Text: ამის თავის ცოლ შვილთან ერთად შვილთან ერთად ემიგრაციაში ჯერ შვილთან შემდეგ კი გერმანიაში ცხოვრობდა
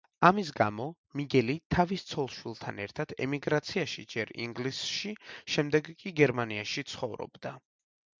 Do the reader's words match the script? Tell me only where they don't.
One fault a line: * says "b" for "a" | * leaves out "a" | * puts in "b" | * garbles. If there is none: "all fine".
* puts in "გამო მიგელი"
* leaves out "შვილთან ერთად"
* says "ინგლისში" for "შვილთან"